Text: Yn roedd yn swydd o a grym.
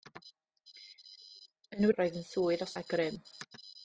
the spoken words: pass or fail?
pass